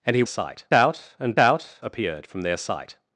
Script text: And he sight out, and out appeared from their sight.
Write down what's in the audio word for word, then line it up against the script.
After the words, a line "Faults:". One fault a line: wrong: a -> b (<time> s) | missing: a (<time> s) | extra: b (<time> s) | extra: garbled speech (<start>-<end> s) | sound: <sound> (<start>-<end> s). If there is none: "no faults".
And he sight out, and out appeared from their sight.
Faults:
no faults